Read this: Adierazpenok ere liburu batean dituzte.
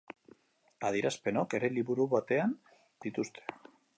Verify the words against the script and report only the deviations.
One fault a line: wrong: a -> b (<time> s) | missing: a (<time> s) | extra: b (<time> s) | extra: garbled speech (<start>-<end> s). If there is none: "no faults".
no faults